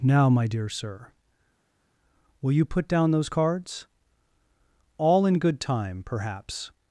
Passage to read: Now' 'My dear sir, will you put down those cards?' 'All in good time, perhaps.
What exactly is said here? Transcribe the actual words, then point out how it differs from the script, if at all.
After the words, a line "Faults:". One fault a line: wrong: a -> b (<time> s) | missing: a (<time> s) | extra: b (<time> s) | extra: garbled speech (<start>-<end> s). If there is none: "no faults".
Now' 'My dear sir, will you put down those cards?' 'All in good time, perhaps.
Faults:
no faults